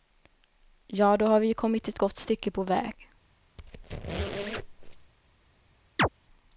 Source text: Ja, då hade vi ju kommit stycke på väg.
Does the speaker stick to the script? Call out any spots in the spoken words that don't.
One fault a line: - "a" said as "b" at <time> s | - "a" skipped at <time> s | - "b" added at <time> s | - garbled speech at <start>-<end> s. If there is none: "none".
- "hade" said as "har" at 1.2 s
- "ett gott" added at 1.9 s